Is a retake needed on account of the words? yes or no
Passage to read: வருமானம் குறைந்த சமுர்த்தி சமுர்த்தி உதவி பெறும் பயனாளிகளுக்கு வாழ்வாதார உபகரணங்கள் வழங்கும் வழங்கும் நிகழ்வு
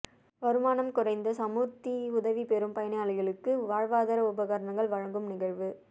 yes